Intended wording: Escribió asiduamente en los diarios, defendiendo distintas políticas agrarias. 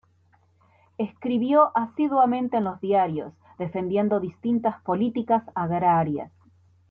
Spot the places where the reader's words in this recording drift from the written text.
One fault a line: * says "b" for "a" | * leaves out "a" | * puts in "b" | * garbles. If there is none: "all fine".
all fine